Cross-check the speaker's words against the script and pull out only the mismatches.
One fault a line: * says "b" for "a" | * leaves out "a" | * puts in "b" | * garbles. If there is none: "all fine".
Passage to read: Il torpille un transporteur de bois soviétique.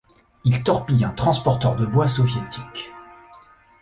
all fine